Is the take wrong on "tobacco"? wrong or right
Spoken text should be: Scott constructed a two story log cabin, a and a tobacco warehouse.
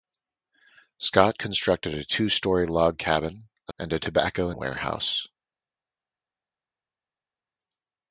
right